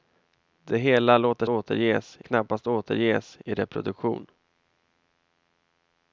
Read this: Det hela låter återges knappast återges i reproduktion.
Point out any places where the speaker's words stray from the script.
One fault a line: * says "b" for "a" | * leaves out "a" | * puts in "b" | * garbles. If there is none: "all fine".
all fine